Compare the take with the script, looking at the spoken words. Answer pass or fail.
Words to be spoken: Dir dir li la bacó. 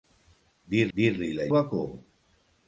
pass